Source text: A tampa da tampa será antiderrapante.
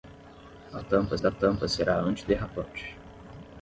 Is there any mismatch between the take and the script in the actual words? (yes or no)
no